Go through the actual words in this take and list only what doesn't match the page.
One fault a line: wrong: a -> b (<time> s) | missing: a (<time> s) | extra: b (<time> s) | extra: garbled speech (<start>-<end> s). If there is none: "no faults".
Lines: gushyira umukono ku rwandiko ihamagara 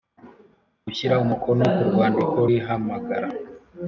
no faults